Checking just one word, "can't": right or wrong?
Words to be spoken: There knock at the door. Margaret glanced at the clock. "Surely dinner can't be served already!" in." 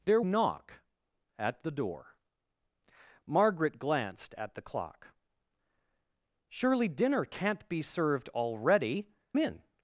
right